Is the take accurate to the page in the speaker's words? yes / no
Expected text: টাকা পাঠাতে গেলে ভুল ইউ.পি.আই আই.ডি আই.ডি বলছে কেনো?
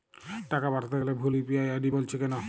no